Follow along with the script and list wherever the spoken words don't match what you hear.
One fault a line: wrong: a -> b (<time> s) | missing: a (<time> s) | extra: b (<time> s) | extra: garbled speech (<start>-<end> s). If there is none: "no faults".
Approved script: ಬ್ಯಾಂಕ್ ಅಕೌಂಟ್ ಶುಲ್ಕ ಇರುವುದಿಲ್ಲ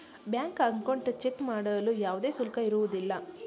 extra: ಚೆಕ್ ಮಾಡಲು ಯಾವುದೇ (1.2 s)